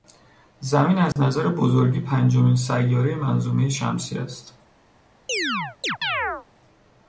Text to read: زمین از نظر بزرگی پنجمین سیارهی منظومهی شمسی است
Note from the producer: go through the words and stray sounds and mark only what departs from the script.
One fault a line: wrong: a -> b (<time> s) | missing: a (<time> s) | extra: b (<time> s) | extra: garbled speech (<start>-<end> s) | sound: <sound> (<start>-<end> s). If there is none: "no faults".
sound: dropout (1.1-1.2 s)
sound: chirp (5.3-6.5 s)